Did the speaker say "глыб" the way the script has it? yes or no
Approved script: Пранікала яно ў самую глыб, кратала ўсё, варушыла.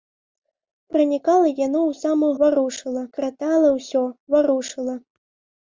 no